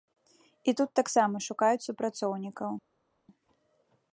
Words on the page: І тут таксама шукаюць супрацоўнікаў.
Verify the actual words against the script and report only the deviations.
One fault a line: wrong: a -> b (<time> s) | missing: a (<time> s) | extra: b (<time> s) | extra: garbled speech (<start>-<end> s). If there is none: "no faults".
no faults